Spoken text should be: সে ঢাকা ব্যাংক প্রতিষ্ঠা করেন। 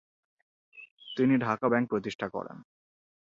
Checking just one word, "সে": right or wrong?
wrong